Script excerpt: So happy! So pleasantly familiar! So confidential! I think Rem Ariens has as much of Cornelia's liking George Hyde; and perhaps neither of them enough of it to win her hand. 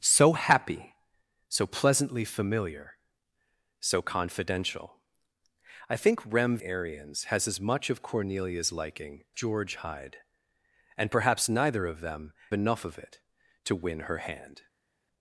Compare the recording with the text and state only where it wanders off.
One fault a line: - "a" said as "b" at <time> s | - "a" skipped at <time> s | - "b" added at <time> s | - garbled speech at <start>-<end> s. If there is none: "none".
none